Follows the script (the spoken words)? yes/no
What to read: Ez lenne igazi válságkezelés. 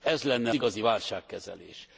yes